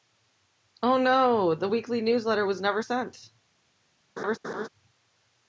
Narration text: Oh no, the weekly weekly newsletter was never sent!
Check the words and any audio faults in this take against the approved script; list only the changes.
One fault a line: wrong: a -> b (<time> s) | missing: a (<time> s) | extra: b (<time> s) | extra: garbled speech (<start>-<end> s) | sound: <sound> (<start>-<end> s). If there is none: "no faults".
missing: weekly (2.0 s)
sound: laugh (4.2-4.7 s)